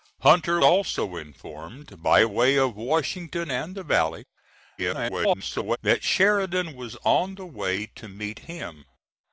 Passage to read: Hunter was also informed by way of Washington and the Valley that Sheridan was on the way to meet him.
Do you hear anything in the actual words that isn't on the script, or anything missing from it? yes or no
yes